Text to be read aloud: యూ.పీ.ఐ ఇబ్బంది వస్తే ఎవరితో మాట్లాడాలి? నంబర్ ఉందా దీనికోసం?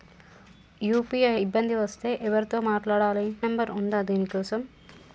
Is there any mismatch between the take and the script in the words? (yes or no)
no